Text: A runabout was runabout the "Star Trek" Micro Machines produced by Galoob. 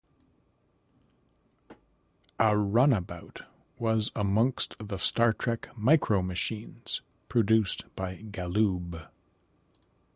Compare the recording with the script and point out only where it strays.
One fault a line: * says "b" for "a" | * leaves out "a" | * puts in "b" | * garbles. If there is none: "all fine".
* says "amongst" for "runabout"